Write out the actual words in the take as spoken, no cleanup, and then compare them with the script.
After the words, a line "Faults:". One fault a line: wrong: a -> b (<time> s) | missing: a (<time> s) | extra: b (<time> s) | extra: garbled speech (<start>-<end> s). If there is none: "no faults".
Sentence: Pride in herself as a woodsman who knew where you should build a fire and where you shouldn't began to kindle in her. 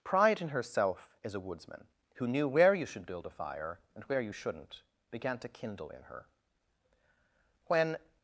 Pride in herself as a woodsman who knew where you should build a fire and where you shouldn't began to kindle in her. When
Faults:
extra: When (7.7 s)